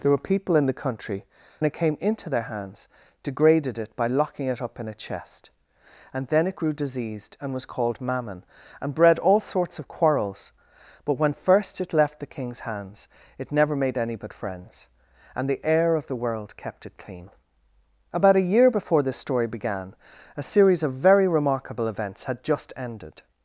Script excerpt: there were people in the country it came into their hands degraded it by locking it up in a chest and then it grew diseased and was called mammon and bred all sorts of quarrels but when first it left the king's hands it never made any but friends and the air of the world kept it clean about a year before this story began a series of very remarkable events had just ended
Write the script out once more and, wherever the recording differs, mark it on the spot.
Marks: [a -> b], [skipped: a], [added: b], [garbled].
there were people in the country it came into their hands degraded it by locking it up in a chest and then it grew diseased and was called mammon and bred all sorts of quarrels but when first it left the king's hands it never made any but friends and the air of the world kept it clean about a year before this story began a series of very remarkable events had just ended